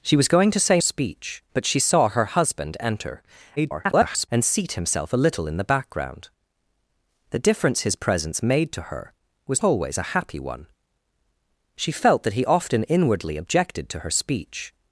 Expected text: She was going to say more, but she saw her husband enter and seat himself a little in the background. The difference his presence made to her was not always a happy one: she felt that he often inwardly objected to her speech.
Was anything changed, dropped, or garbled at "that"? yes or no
no